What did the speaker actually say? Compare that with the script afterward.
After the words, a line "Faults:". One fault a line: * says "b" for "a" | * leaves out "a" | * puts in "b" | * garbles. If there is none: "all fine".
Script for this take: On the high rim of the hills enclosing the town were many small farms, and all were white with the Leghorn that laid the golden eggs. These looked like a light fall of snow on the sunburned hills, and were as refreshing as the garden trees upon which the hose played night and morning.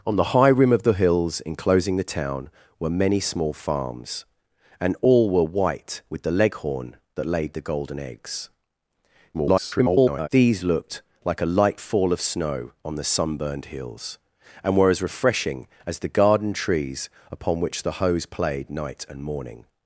On the high rim of the hills enclosing the town were many small farms, and all were white with the Leghorn that laid the golden eggs. [garbled] These looked like a light fall of snow on the sunburned hills, and were as refreshing as the garden trees upon which the hose played night and morning.
Faults:
* garbles